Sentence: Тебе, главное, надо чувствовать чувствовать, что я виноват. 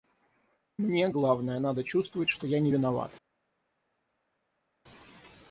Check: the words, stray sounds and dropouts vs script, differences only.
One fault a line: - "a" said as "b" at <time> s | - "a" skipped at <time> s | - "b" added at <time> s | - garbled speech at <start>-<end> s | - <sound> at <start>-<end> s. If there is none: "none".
- "Тебе" said as "Мне" at 0.8 s
- "чувствовать" skipped at 2.3 s
- "не" added at 2.6 s